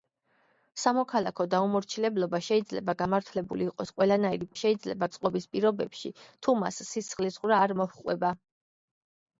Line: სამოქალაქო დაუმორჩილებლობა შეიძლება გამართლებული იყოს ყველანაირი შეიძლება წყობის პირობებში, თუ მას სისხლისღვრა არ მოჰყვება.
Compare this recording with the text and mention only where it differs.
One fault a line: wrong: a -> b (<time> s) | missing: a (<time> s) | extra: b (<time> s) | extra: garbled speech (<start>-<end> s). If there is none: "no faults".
no faults